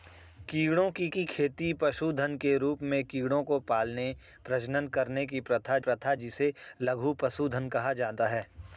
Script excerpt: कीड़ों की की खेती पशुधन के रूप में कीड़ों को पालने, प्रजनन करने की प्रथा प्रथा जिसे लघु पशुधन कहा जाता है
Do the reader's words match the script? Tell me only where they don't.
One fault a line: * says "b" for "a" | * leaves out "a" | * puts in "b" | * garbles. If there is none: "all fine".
all fine